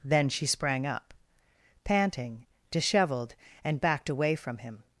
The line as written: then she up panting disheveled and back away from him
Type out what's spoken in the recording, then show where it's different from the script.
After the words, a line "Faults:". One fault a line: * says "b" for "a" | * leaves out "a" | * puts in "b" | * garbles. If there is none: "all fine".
then she sprang up panting disheveled and backed away from him
Faults:
* puts in "sprang"
* says "backed" for "back"